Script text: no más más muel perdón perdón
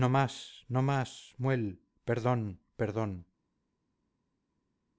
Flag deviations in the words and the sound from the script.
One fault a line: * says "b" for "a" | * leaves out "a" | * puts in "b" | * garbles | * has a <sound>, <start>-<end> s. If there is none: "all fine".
* puts in "no"